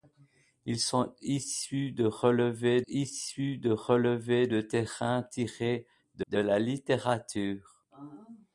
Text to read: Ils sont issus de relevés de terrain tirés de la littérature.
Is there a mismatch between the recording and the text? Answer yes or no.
yes